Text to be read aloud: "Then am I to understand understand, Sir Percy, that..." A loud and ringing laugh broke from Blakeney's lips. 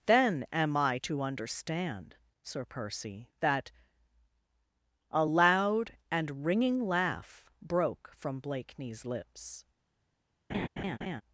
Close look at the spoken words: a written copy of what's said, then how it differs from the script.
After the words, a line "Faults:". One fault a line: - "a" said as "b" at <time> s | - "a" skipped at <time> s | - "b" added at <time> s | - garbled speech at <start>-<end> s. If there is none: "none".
"Then am I to understand, Sir Percy, that..." A loud and ringing laugh broke from Blakeney's lips.
Faults:
- "understand" skipped at 2.1 s